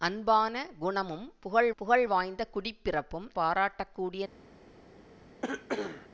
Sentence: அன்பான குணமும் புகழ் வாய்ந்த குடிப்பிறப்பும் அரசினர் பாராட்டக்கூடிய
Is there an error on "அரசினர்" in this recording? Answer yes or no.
yes